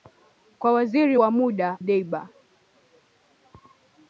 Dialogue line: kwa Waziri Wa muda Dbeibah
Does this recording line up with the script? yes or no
yes